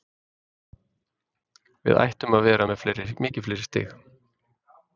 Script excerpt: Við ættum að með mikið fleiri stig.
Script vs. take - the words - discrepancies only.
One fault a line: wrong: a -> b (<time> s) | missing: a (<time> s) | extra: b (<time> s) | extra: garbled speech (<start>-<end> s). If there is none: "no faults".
extra: vera (2.5 s)